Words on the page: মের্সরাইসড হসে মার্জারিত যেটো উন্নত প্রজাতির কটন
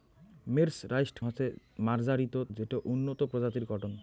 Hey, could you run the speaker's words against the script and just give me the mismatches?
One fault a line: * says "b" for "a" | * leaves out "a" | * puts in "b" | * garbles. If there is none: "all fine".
all fine